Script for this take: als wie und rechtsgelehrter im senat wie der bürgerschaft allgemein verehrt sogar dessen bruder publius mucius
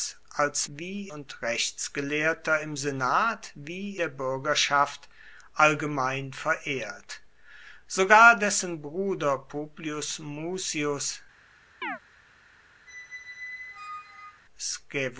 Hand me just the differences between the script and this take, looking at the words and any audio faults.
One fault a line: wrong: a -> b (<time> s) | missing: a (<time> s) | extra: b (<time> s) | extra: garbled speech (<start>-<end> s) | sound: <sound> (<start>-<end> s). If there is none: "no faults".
sound: chirp (11.8-12.0 s)
sound: squeak (12.9-14.4 s)